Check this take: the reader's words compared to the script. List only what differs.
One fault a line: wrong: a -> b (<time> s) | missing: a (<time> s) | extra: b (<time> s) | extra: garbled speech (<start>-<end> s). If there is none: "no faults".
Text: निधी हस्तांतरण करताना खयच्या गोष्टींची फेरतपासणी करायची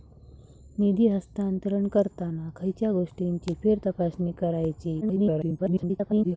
extra: garbled speech (5.0-6.4 s)